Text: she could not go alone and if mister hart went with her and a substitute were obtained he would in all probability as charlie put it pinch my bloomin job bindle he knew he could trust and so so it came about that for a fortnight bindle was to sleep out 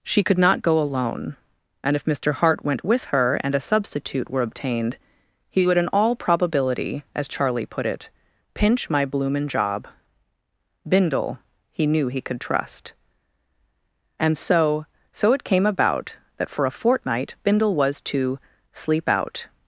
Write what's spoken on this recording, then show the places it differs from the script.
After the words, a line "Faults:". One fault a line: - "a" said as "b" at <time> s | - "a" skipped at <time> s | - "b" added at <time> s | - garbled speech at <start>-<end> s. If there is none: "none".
she could not go alone and if mister hart went with her and a substitute were obtained he would in all probability as charlie put it pinch my bloomin job bindle he knew he could trust and so so it came about that for a fortnight bindle was to sleep out
Faults:
none